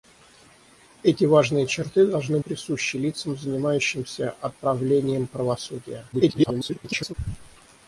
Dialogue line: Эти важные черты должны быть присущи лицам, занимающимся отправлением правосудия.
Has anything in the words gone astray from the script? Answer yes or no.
yes